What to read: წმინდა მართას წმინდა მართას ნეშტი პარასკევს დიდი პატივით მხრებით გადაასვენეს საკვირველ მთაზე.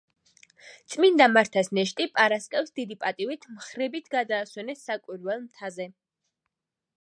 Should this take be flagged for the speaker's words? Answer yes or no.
yes